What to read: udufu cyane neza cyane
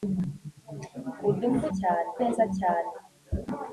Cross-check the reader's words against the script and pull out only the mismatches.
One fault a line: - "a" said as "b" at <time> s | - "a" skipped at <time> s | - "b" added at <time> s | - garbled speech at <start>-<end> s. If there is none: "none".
none